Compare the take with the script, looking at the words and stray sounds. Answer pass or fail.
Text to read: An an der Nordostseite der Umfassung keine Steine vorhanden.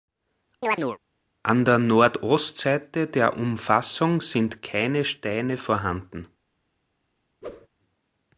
fail